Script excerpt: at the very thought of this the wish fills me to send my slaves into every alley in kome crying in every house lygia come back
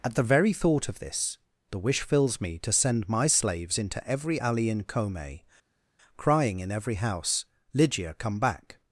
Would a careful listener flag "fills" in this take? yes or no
no